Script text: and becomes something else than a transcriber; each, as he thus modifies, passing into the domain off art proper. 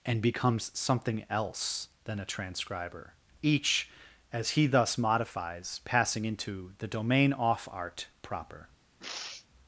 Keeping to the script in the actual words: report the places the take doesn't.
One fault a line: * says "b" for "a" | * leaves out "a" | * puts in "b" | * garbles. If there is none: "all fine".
all fine